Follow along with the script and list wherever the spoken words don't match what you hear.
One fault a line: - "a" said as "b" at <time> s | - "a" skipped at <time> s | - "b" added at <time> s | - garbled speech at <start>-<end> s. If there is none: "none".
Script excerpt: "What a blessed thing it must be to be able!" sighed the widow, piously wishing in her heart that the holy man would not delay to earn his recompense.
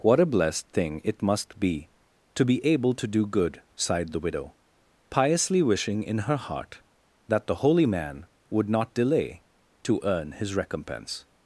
- "to do good" added at 3.0 s